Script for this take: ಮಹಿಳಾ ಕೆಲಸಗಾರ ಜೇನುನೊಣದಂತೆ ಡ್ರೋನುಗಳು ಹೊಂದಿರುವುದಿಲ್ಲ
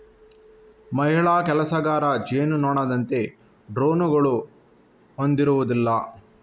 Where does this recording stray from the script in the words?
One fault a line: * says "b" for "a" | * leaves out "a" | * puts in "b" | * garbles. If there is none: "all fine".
all fine